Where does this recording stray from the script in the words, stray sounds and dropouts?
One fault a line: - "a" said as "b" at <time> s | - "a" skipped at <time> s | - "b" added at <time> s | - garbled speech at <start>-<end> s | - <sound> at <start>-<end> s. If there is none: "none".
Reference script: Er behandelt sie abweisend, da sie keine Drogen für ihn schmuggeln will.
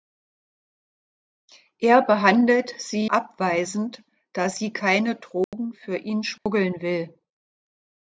- dropout at 5.4-5.5 s
- dropout at 6.4-6.5 s